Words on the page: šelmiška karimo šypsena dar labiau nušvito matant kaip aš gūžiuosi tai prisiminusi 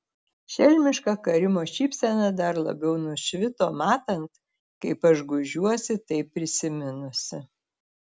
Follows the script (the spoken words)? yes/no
yes